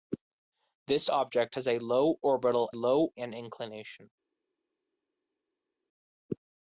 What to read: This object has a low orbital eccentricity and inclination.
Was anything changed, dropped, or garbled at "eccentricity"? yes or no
yes